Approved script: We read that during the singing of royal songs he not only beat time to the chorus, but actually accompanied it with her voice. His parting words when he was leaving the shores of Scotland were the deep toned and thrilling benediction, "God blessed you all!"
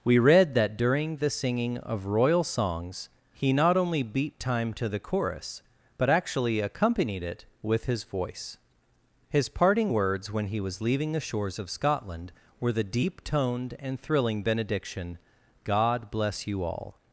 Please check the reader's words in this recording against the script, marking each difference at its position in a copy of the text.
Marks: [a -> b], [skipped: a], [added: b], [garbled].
We read that during the singing of royal songs he not only beat time to the chorus, but actually accompanied it with [her -> his] voice. His parting words when he was leaving the shores of Scotland were the deep toned and thrilling benediction, "God [blessed -> bless] you all!"